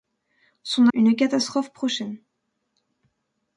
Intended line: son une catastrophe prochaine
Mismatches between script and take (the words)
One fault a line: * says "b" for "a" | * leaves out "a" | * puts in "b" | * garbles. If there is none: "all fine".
all fine